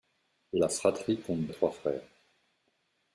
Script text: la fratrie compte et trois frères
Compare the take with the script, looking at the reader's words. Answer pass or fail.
pass